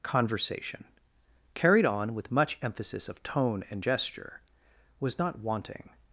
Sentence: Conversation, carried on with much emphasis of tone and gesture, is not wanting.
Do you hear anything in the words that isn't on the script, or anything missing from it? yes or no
yes